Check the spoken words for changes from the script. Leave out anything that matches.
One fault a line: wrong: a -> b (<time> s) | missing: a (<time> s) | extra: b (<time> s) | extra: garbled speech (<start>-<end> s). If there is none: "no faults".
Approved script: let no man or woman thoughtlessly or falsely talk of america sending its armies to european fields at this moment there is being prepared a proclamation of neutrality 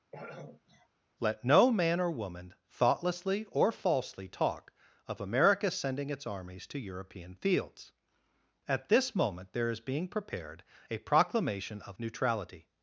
no faults